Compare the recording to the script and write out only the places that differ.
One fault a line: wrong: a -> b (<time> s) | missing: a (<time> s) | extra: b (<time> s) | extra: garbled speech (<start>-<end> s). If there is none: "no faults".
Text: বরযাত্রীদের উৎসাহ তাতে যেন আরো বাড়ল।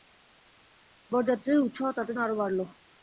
missing: যেন (2.1 s)